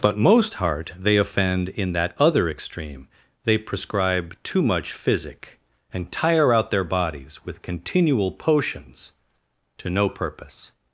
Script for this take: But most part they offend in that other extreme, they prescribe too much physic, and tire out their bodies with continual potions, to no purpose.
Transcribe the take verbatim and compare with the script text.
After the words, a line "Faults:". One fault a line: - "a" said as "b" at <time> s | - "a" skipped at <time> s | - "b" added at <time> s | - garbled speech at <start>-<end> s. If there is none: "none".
But most heart they offend in that other extreme, they prescribe too much physic, and tire out their bodies with continual potions, to no purpose.
Faults:
- "part" said as "heart" at 0.6 s